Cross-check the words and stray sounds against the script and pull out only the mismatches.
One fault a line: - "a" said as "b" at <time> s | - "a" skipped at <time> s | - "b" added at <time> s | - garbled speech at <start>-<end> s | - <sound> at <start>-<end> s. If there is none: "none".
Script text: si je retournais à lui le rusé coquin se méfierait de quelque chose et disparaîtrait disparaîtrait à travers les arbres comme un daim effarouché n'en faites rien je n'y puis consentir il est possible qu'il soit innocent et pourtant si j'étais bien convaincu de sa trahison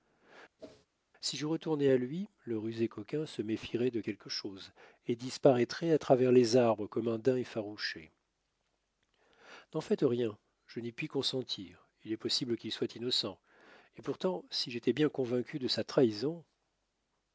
- whoosh at 0.6-0.9 s
- "disparaîtrait" skipped at 5.9 s